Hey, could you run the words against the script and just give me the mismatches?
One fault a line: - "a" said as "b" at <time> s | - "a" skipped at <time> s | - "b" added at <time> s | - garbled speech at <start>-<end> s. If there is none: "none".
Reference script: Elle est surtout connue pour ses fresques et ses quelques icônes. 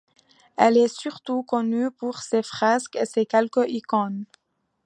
none